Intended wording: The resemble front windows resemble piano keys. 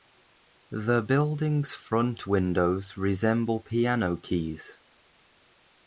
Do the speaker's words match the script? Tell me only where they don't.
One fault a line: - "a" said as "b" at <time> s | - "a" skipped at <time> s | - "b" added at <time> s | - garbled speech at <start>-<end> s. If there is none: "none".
- "resemble" said as "building's" at 1.0 s